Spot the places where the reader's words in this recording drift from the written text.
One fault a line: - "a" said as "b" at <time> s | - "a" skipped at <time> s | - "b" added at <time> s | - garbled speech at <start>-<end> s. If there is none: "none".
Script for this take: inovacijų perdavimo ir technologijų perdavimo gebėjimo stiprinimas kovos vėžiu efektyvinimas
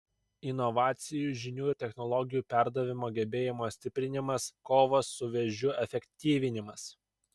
- "perdavimo" said as "žinių" at 1.4 s
- "su" added at 5.2 s